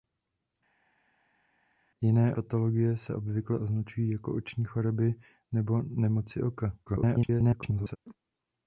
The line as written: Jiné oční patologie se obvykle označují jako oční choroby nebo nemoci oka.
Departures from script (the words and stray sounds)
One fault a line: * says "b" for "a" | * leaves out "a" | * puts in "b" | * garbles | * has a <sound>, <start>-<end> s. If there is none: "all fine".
* leaves out "oční"
* garbles